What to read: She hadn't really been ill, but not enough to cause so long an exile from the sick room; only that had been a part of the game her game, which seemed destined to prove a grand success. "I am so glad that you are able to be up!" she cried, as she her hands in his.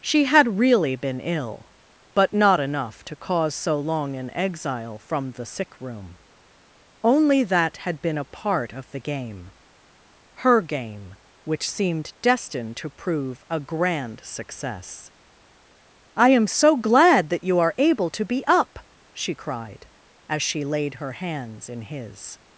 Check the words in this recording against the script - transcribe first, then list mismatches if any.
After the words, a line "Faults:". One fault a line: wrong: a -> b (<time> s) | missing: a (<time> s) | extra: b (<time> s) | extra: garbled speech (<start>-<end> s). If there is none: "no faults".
She had really been ill, but not enough to cause so long an exile from the sick room; only that had been a part of the game her game, which seemed destined to prove a grand success. "I am so glad that you are able to be up!" she cried, as she laid her hands in his.
Faults:
wrong: hadn't -> had (0.2 s)
extra: laid (20.6 s)